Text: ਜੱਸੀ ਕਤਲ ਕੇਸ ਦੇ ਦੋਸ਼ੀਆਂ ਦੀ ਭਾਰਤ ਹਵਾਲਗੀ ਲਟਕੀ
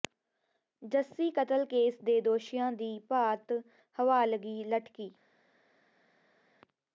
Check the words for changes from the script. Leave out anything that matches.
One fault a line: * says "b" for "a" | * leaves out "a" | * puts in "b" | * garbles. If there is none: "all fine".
all fine